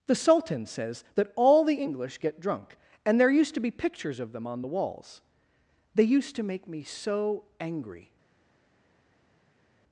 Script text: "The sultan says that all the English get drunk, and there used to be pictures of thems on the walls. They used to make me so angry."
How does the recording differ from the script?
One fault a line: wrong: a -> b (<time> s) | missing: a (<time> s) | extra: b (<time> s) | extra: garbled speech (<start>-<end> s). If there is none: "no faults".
wrong: thems -> them (4.3 s)